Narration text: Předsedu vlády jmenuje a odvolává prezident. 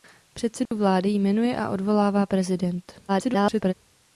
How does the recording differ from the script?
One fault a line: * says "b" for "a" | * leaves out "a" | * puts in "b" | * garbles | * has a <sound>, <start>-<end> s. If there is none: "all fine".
* has a dropout, 0.7-0.7 s
* garbles